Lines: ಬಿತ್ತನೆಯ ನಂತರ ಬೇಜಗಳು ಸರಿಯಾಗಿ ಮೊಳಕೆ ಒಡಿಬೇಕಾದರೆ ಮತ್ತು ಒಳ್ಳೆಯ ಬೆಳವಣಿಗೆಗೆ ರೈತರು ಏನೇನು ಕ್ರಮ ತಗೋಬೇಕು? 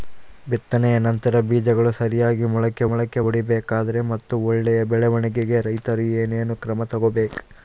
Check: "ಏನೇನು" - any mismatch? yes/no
no